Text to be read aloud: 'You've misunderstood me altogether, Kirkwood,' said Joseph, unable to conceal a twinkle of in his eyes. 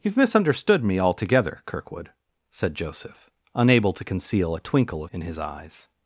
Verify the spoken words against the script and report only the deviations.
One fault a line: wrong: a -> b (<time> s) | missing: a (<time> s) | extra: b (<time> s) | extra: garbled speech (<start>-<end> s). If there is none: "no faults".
no faults